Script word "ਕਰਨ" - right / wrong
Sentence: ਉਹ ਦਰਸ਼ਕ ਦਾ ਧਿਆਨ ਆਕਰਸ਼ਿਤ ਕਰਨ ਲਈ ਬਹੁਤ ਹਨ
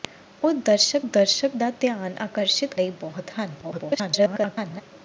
wrong